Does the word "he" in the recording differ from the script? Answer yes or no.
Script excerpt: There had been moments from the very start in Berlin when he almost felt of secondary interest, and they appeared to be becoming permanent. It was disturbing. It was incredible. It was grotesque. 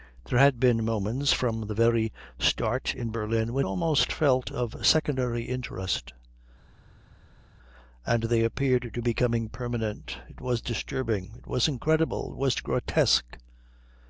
yes